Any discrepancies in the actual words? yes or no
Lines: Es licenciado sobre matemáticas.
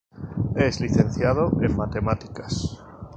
yes